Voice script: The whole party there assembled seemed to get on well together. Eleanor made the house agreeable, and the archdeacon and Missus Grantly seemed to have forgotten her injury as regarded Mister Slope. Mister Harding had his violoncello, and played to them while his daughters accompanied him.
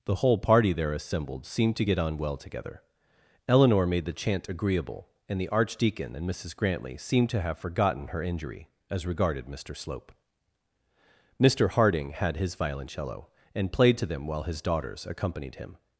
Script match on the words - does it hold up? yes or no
no